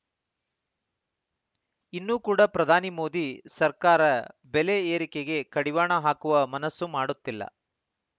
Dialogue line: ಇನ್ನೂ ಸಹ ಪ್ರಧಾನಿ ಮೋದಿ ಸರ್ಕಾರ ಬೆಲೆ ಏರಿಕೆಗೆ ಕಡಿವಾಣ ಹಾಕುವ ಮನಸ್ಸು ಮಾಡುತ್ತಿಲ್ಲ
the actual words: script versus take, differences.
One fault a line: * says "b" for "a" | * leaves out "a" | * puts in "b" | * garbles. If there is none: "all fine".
* says "ಕೂಡ" for "ಸಹ"